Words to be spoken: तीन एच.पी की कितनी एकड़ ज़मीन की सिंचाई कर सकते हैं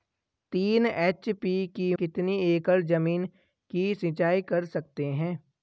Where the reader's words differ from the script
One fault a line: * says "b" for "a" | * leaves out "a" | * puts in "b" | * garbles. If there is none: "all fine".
all fine